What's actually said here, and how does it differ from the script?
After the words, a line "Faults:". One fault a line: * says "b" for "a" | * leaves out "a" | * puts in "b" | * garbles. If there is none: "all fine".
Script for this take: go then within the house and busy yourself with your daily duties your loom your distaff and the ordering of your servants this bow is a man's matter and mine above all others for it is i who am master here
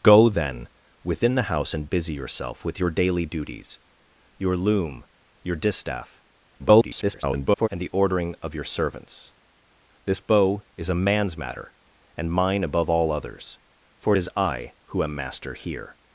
go then within the house and busy yourself with your daily duties your loom your distaff [garbled] and the ordering of your servants this bow is a man's matter and mine above all others for it is i who am master here
Faults:
* garbles